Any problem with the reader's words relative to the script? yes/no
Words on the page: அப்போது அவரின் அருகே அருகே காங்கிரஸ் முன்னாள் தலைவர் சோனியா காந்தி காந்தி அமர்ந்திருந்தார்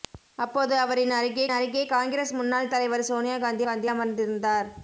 no